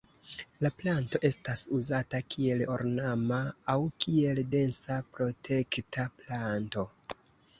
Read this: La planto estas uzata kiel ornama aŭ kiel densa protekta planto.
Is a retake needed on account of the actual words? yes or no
no